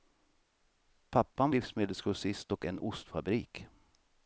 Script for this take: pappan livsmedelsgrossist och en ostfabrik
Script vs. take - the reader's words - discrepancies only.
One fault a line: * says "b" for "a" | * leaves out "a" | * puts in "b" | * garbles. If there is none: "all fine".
all fine